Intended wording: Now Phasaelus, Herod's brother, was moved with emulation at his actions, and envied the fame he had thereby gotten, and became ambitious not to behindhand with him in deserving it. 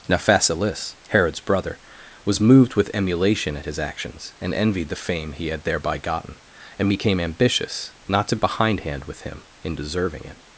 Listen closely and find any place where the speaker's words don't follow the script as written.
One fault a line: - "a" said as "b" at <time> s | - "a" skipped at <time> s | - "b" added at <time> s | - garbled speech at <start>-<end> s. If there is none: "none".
none